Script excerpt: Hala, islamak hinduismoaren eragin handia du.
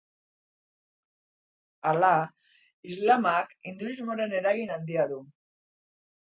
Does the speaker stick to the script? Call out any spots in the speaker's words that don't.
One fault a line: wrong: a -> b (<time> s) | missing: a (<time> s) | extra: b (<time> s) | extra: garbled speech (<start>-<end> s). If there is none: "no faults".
no faults